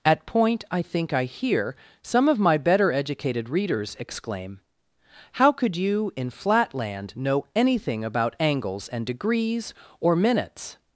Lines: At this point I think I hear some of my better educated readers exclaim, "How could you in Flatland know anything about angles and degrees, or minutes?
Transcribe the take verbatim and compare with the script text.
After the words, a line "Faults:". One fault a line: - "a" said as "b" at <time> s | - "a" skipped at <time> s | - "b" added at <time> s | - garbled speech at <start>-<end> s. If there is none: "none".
At point I think I hear some of my better educated readers exclaim, "How could you in Flatland know anything about angles and degrees, or minutes?
Faults:
- "this" skipped at 0.2 s